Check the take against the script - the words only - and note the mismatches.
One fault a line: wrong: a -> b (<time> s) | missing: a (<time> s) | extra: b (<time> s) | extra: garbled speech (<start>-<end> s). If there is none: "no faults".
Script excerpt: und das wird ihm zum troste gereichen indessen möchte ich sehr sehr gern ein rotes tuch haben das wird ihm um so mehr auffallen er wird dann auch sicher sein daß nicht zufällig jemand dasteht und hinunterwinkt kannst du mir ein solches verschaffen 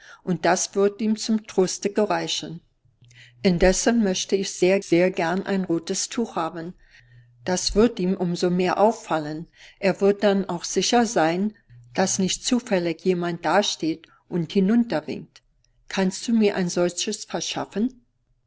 no faults